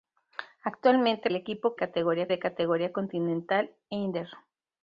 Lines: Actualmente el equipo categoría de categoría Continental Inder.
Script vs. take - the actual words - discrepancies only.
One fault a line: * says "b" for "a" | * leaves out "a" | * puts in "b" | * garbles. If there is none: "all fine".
all fine